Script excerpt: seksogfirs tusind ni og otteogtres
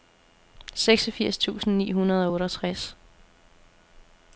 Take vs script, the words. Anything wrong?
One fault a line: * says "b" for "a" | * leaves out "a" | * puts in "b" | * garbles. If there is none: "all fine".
* puts in "hundrede"